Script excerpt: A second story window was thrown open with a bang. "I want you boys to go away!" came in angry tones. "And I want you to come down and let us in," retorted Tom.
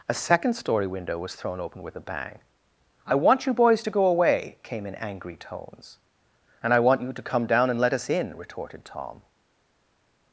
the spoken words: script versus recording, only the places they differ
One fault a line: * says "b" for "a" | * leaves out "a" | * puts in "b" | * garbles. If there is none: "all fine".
all fine